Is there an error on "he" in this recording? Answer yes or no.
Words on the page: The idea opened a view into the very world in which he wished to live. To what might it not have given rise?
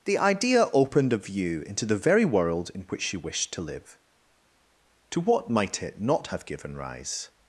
yes